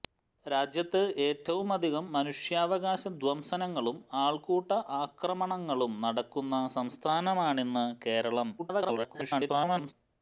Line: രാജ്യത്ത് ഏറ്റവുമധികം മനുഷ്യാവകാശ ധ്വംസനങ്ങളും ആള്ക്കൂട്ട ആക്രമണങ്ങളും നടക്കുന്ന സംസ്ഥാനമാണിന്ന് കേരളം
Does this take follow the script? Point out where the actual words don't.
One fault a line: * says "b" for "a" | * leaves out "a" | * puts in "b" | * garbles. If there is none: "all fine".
* garbles